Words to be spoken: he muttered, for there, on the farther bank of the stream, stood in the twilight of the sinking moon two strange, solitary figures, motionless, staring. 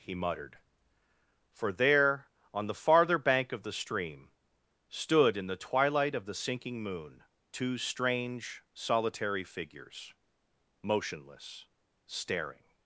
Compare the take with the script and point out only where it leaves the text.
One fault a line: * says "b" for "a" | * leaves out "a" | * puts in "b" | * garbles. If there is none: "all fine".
all fine